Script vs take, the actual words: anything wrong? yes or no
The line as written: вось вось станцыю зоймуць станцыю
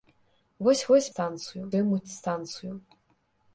no